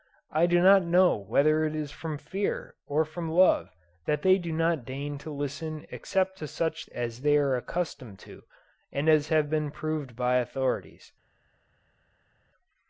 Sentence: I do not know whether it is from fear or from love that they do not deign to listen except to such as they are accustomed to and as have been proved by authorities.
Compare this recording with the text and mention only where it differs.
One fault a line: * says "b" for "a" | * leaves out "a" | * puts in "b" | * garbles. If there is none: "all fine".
all fine